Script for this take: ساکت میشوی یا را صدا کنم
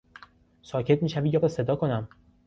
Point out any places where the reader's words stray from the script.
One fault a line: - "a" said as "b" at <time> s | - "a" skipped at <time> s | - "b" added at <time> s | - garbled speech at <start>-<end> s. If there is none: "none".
none